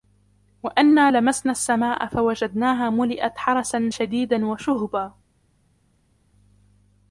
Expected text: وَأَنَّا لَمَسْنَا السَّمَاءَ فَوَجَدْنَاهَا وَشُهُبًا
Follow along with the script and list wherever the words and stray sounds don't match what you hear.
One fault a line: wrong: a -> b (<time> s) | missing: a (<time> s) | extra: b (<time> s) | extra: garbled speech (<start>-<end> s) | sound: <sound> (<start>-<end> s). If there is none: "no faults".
extra: مُلِئَتْ حَرَسًا شَدِيدًا (2.9 s)